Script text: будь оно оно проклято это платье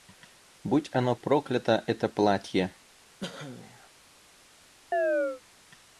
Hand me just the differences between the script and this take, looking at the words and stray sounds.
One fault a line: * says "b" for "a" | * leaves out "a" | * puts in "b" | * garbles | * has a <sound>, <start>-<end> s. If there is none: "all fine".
* leaves out "оно"
* has a cough, 3.2-3.9 s
* has a chirp, 4.9-5.4 s